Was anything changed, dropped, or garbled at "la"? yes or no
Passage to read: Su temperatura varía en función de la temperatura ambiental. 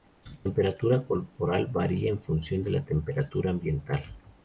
no